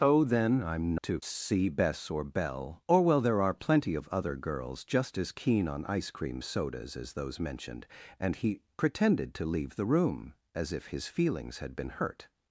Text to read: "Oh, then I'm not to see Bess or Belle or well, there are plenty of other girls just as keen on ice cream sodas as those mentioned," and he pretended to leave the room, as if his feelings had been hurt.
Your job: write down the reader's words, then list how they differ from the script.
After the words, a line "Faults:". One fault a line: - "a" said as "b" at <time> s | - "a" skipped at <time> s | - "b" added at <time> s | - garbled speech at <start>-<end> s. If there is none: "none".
"Oh, then I'm to see Bess or Belle or well, there are plenty of other girls just as keen on ice cream sodas as those mentioned," and he pretended to leave the room, as if his feelings had been hurt.
Faults:
- "not" skipped at 0.9 s